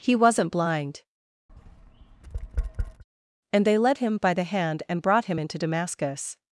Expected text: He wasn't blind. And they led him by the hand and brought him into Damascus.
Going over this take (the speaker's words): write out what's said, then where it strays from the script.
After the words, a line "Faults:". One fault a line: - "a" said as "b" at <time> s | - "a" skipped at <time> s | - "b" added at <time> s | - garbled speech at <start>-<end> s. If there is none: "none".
He wasn't blind. And they led him by the hand and brought him into Damascus.
Faults:
none